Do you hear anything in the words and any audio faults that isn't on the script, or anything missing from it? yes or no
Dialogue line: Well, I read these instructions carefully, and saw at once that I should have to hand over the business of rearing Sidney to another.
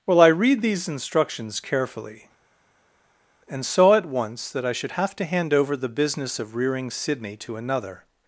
no